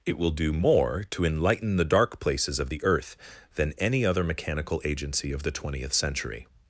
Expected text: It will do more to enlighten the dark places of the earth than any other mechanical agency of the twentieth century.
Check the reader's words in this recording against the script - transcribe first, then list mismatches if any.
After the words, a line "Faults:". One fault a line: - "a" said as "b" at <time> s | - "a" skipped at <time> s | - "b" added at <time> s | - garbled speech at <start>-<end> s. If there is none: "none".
It will do more to enlighten the dark places of the earth than any other mechanical agency of the twentieth century.
Faults:
none